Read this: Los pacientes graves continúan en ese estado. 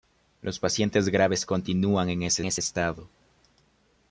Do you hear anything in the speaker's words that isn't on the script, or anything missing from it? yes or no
yes